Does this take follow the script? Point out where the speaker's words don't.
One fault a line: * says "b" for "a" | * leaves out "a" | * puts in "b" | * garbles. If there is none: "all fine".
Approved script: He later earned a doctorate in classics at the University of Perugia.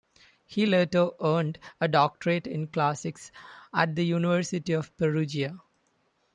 all fine